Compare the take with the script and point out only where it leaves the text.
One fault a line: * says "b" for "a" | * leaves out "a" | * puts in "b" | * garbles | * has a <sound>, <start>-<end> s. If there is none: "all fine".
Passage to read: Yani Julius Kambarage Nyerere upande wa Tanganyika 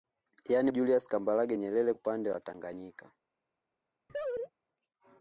* has a laugh, 4.1-4.5 s